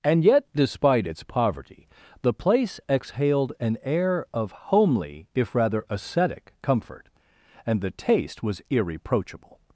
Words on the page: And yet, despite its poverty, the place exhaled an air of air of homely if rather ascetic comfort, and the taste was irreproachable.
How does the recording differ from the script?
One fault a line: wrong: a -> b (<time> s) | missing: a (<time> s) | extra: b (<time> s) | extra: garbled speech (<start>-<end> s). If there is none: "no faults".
missing: air of (4.5 s)